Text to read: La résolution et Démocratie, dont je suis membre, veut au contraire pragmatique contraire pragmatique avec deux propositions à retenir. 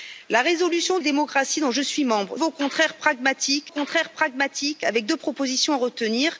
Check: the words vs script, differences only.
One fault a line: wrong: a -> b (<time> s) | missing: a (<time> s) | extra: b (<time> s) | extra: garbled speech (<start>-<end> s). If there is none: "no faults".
no faults